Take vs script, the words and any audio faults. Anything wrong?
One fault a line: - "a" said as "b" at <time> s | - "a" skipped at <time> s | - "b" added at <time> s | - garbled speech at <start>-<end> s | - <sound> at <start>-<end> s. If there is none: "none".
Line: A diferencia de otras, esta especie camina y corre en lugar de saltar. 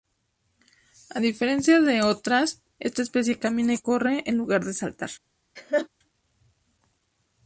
- laugh at 5.6-5.9 s